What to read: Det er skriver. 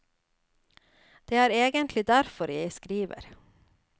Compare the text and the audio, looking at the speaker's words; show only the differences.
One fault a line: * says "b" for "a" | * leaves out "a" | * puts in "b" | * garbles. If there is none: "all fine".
* puts in "egentlig derfor jeg"